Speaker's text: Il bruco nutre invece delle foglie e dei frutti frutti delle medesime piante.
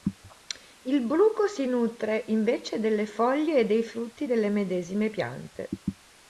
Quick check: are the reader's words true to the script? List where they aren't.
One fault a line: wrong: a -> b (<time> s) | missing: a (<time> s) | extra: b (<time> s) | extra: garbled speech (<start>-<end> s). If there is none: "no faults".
extra: si (1.4 s)
missing: frutti (4.3 s)